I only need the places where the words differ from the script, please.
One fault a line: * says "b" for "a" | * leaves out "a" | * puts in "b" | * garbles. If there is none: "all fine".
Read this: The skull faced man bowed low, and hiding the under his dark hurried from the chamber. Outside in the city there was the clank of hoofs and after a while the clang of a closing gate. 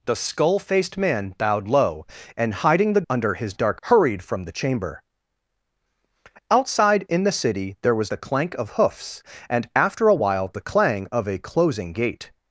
all fine